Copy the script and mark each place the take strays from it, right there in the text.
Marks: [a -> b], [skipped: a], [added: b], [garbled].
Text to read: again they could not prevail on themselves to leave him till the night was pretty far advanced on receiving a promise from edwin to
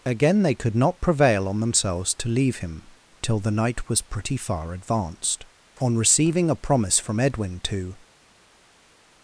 again they could not prevail on themselves to leave him till the night was pretty far advanced on receiving a promise from edwin to